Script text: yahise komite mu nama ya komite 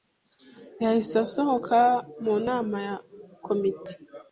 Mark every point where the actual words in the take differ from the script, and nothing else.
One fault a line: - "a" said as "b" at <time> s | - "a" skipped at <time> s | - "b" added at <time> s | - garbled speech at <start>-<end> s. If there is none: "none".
- "komite" said as "asohoka" at 1.2 s